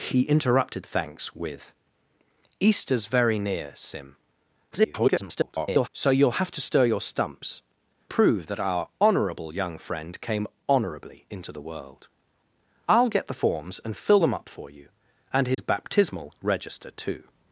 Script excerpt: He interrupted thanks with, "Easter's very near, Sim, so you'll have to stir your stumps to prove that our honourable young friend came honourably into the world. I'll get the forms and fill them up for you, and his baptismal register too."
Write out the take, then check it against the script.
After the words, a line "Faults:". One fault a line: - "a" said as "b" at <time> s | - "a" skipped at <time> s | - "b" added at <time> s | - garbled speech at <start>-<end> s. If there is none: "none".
He interrupted thanks with, "Easter's very near, Sim, [garbled] so you'll have to stir your stumps prove that our honourable young friend came honourably into the world. I'll get the forms and fill them up for you, and his baptismal register too."
Faults:
- garbled speech at 4.7-5.9 s
- "to" skipped at 7.6 s